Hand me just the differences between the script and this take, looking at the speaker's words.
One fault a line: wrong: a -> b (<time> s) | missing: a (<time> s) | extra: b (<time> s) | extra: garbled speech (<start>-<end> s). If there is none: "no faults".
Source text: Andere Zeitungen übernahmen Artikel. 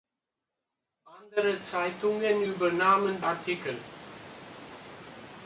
no faults